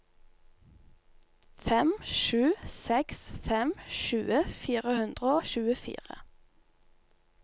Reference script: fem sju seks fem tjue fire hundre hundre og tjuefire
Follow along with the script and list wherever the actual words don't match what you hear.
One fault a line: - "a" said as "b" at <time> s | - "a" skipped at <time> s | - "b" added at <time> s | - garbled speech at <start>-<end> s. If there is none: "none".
- "hundre" skipped at 5.3 s